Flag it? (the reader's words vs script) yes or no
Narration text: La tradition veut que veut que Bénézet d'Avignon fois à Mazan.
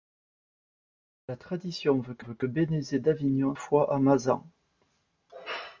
no